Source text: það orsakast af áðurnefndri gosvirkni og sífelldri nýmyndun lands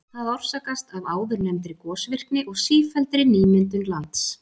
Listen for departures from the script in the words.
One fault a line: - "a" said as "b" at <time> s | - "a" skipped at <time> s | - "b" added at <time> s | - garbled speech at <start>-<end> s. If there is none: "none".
none